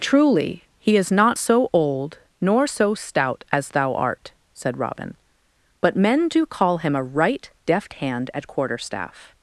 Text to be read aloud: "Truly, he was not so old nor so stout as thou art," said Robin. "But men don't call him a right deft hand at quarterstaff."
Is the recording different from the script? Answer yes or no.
yes